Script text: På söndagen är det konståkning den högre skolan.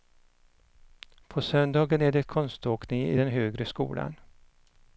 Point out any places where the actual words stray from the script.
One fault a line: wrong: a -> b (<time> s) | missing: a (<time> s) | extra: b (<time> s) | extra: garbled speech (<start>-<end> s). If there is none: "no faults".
extra: i (3.1 s)